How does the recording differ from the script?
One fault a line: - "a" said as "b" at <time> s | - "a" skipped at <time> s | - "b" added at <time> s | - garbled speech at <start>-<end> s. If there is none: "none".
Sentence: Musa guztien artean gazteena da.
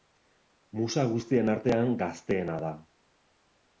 none